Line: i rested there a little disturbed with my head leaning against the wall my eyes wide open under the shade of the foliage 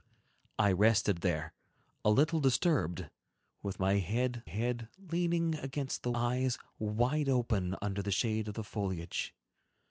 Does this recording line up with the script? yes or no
no